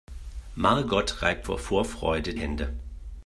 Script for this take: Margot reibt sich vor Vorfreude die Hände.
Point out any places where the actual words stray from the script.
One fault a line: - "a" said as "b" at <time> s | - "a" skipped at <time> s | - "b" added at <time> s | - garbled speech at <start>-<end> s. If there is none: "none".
- "sich" skipped at 1.5 s
- "die" skipped at 2.3 s